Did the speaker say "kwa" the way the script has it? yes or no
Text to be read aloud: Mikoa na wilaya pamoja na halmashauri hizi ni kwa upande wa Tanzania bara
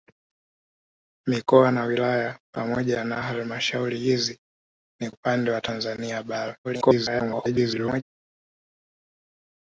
no